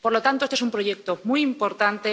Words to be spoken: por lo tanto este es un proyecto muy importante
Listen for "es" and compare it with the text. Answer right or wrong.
right